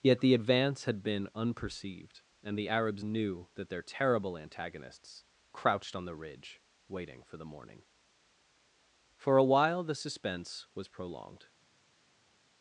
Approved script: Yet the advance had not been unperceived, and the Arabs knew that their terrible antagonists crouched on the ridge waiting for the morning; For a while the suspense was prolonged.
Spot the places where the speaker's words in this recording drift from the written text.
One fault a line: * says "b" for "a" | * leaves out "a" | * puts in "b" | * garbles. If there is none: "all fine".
* leaves out "not"